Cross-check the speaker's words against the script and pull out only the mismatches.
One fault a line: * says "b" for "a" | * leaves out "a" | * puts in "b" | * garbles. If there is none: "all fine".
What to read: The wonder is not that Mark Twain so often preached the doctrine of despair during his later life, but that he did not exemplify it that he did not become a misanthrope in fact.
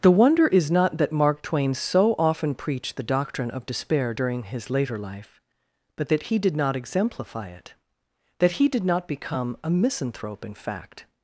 all fine